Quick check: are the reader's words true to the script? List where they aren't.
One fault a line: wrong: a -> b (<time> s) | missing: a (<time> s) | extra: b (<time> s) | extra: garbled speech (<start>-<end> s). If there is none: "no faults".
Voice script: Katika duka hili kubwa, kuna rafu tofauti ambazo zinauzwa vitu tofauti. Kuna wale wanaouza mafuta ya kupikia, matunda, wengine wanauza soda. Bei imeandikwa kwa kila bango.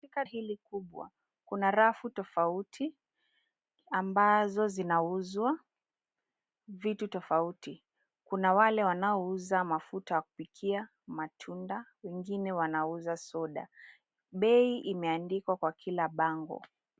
missing: duka (0.2 s)